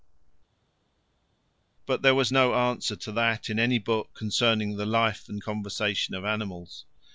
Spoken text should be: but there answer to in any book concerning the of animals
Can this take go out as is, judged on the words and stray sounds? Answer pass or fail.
fail